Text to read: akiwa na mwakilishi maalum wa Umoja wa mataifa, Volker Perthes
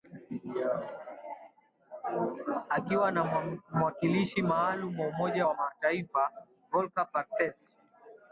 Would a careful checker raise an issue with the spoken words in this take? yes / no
no